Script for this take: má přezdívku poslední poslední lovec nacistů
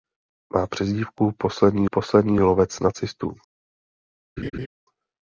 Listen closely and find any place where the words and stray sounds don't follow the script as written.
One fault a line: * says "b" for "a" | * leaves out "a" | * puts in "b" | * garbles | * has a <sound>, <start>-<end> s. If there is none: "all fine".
* has a laugh, 4.4-4.7 s